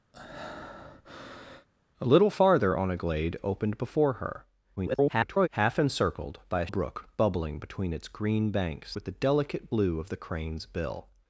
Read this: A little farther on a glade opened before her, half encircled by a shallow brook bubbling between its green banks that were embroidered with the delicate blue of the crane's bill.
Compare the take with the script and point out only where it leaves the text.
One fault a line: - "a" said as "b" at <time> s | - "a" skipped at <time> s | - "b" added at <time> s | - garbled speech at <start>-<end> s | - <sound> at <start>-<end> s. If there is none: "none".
- breath at 0.1-1.7 s
- garbled speech at 4.8-5.5 s
- "shallow" skipped at 6.7 s
- "that were embroidered" skipped at 9.0 s